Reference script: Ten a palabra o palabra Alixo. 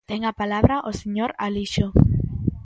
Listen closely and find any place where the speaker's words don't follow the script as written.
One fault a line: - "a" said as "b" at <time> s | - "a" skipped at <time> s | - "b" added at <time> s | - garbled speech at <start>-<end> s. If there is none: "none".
- "palabra" said as "señor" at 1.0 s